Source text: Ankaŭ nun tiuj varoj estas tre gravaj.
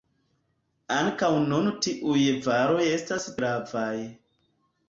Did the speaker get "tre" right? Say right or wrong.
wrong